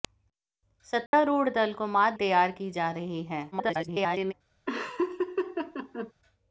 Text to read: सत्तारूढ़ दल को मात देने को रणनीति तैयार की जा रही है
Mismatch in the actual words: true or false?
true